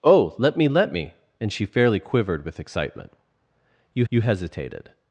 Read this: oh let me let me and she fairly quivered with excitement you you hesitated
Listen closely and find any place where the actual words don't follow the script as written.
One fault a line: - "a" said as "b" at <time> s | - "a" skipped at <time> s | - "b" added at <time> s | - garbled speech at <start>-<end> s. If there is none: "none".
none